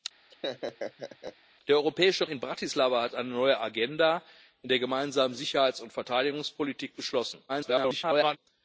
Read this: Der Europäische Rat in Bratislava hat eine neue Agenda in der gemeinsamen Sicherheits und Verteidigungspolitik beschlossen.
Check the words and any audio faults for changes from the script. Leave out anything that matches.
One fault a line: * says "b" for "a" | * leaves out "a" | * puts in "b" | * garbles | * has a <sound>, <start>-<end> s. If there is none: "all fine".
* has a laugh, 0.3-1.4 s
* leaves out "Rat"
* garbles